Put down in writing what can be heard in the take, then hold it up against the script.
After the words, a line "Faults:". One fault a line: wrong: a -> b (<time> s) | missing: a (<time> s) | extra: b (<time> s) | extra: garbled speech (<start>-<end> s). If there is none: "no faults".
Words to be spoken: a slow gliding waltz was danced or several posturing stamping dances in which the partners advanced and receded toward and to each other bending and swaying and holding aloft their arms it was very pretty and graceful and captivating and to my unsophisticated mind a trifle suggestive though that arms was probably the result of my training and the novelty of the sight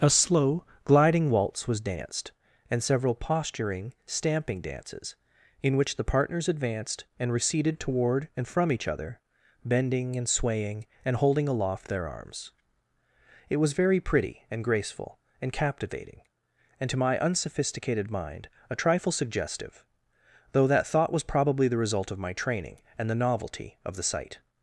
a slow gliding waltz was danced and several posturing stamping dances in which the partners advanced and receded toward and from each other bending and swaying and holding aloft their arms it was very pretty and graceful and captivating and to my unsophisticated mind a trifle suggestive though that thought was probably the result of my training and the novelty of the sight
Faults:
wrong: or -> and (2.7 s)
wrong: to -> from (8.5 s)
wrong: arms -> thought (20.9 s)